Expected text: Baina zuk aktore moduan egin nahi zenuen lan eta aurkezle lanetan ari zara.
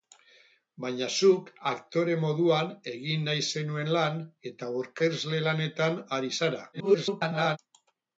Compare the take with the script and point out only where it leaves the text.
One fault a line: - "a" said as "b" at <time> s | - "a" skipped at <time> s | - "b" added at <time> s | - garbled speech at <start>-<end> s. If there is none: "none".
- garbled speech at 6.7-7.6 s